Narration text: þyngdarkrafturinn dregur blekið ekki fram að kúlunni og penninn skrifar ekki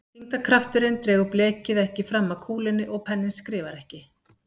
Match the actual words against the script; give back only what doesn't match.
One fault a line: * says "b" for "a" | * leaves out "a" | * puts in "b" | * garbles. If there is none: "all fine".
all fine